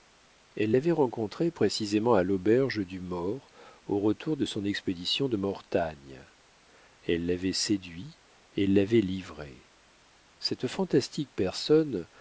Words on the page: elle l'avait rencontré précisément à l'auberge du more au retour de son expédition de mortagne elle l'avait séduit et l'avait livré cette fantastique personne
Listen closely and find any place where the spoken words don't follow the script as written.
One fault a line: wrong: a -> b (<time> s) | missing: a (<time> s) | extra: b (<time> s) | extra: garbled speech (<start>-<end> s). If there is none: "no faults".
no faults